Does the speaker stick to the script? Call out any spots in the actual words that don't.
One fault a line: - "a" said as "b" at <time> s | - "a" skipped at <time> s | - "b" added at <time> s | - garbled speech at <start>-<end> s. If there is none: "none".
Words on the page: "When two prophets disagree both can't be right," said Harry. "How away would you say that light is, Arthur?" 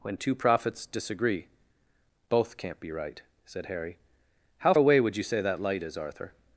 none